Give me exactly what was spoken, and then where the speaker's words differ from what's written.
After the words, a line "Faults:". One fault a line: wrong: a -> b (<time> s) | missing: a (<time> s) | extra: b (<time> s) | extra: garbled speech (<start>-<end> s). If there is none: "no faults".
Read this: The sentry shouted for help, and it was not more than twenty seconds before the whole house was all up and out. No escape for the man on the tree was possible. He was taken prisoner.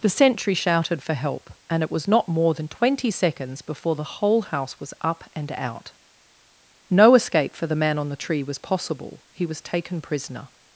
The sentry shouted for help, and it was not more than twenty seconds before the whole house was up and out. No escape for the man on the tree was possible. He was taken prisoner.
Faults:
missing: all (5.0 s)